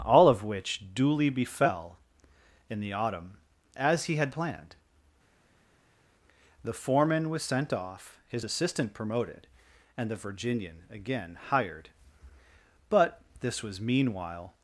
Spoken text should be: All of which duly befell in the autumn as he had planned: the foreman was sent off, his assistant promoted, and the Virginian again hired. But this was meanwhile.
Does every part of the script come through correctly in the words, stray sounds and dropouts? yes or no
yes